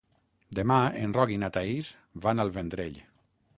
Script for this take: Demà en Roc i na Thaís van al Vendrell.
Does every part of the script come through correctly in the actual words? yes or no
yes